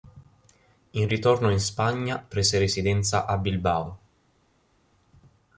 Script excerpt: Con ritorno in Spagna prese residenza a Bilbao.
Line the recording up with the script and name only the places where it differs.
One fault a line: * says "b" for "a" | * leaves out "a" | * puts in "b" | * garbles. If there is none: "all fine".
* says "In" for "Con"